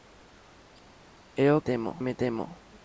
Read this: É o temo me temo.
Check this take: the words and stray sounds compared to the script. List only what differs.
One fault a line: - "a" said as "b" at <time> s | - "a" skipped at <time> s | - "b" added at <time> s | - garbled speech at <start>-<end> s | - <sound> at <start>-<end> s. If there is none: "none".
none